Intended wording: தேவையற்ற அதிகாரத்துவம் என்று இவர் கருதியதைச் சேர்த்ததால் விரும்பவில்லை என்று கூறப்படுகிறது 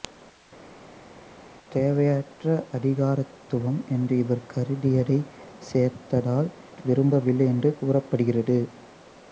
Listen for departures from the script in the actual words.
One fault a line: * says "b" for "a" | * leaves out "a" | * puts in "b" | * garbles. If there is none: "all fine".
all fine